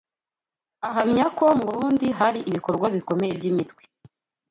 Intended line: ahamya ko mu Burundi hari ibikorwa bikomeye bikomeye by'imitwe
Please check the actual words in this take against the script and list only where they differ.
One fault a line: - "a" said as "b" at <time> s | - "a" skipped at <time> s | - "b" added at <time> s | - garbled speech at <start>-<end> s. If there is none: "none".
- "bikomeye" skipped at 3.3 s